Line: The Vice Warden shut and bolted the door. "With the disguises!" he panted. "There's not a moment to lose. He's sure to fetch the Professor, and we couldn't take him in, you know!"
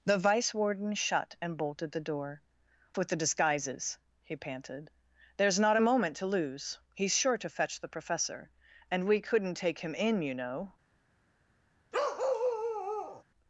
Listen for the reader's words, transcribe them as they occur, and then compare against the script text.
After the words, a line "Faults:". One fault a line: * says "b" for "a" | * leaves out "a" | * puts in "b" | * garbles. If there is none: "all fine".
The Vice Warden shut and bolted the door. "With the disguises!" he panted. "There's not a moment to lose. He's sure to fetch the Professor, and we couldn't take him in, you know!"
Faults:
all fine